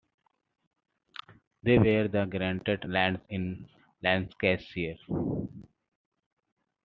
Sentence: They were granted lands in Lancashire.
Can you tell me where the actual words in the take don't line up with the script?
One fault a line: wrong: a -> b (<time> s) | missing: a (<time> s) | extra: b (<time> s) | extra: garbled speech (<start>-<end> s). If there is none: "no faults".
no faults